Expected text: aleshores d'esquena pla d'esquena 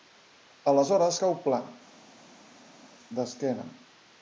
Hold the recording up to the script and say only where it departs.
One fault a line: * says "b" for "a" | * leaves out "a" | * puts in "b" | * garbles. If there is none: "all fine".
* says "cau" for "d'esquena"